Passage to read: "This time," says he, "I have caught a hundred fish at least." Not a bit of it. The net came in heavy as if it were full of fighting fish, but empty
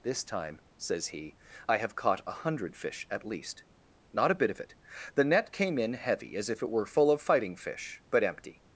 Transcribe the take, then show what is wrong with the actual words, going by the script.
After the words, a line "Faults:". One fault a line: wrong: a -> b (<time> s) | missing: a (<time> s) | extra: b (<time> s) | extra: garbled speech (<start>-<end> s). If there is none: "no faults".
"This time," says he, "I have caught a hundred fish at least." Not a bit of it. The net came in heavy as if it were full of fighting fish, but empty
Faults:
no faults